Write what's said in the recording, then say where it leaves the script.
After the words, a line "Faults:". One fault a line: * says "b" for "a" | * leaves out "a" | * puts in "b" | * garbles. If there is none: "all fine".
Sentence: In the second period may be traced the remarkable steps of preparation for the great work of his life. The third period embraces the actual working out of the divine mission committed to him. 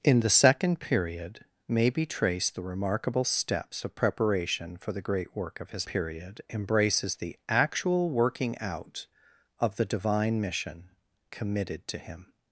In the second period may be traced the remarkable steps of preparation for the great work of his period embraces the actual working out of the divine mission committed to him.
Faults:
* leaves out "life The third"